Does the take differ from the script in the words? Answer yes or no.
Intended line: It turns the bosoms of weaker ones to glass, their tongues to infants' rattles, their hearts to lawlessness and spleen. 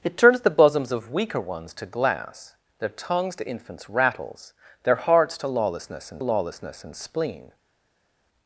yes